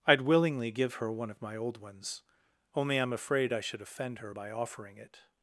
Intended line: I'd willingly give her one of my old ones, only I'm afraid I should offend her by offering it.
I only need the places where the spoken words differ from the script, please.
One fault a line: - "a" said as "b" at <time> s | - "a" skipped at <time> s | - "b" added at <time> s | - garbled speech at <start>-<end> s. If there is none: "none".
none